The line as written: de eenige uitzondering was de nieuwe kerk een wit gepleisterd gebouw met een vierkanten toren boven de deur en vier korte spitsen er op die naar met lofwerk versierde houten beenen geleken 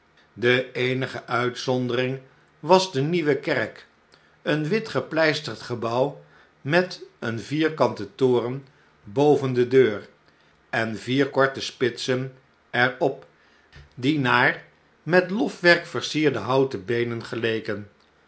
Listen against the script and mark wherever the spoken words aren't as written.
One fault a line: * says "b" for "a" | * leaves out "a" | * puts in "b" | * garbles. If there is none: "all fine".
all fine